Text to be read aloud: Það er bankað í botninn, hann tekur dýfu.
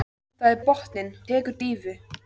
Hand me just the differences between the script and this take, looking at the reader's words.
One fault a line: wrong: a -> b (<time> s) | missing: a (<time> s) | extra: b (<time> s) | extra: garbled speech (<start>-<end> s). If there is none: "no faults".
missing: bankað (0.6 s)
missing: hann (1.1 s)